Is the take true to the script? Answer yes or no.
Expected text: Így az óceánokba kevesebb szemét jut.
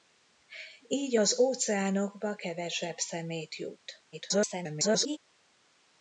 no